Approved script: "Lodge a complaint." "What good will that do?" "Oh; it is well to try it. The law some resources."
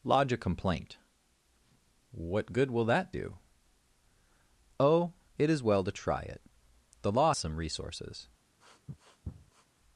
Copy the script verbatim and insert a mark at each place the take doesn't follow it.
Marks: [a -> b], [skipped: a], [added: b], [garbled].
"Lodge a complaint." "What good will that do?" "Oh; it is well to try it. The law some resources."